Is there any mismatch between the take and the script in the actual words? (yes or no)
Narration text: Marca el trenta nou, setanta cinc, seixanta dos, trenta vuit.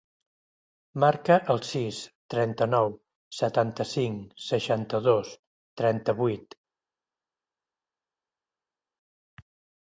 yes